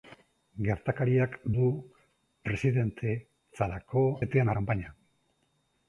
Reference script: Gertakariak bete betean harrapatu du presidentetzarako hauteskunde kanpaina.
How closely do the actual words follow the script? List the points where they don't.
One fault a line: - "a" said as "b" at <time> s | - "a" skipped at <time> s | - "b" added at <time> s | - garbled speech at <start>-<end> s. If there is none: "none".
- "bete betean harrapatu" skipped at 1.4 s
- "hauteskunde" said as "betean" at 4.2 s